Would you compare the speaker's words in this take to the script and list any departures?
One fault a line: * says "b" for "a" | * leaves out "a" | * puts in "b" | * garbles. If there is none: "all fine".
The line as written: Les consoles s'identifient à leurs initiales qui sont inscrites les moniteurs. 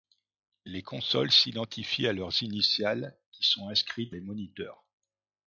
all fine